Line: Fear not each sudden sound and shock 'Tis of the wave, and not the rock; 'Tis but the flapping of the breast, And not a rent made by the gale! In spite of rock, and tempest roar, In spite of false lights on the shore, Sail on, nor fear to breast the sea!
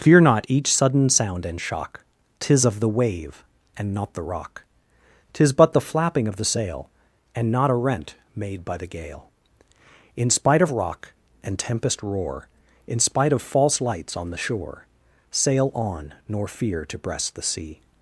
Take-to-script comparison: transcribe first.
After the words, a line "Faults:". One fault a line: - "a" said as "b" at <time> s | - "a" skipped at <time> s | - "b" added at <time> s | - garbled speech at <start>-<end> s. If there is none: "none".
Fear not each sudden sound and shock 'Tis of the wave, and not the rock; 'Tis but the flapping of the sail, And not a rent made by the gale! In spite of rock, and tempest roar, In spite of false lights on the shore, Sail on, nor fear to breast the sea!
Faults:
- "breast" said as "sail" at 6.5 s